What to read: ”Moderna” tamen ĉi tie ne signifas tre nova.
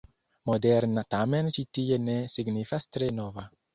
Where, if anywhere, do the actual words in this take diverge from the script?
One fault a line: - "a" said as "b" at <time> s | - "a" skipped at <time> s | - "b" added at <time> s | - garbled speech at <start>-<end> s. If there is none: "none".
none